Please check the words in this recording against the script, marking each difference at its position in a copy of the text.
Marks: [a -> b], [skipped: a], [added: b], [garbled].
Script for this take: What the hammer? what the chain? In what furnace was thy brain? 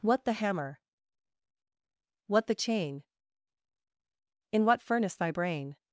What the hammer? what the chain? In what furnace [skipped: was] thy brain?